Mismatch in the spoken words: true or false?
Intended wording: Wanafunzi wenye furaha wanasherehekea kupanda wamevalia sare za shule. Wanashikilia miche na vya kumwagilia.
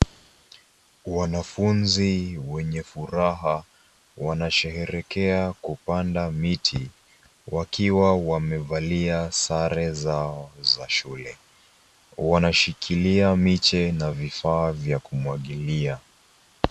true